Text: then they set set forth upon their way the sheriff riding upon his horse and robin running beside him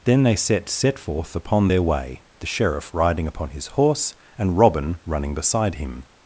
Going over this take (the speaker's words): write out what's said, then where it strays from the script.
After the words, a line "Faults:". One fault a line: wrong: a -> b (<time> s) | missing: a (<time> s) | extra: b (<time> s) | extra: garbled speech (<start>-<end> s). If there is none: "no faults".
then they set set forth upon their way the sheriff riding upon his horse and robin running beside him
Faults:
no faults